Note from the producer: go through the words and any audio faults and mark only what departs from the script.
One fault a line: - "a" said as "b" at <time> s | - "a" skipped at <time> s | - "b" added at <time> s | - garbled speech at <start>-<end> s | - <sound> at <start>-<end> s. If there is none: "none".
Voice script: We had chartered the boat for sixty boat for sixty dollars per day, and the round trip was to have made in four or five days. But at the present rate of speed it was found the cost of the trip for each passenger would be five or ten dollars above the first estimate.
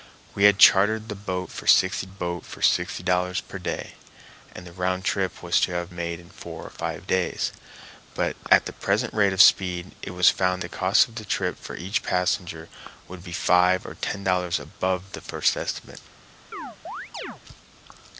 - chirp at 16.5-17.4 s